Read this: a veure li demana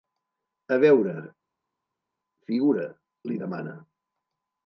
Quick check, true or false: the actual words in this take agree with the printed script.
false